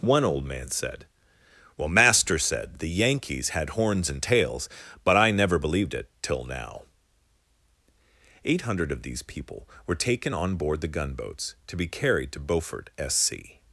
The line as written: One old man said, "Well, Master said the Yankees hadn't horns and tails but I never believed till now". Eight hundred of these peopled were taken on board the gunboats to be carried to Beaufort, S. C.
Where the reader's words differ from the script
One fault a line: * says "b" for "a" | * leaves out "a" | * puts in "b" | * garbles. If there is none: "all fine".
* says "had" for "hadn't"
* puts in "it"
* says "people" for "peopled"